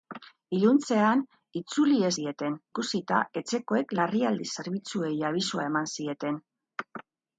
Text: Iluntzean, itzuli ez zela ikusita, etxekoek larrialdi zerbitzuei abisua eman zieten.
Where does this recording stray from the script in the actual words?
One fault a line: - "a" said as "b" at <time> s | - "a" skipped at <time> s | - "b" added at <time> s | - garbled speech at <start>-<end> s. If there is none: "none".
- "zela" said as "zieten" at 2.2 s